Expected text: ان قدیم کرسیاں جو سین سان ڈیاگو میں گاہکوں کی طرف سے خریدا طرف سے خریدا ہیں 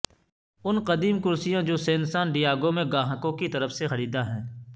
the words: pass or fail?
fail